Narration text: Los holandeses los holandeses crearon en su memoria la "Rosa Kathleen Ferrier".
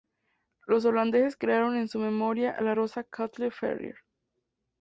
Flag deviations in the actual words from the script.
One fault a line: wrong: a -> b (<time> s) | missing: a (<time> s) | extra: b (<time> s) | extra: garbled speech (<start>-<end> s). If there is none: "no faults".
missing: los holandeses (1.4 s)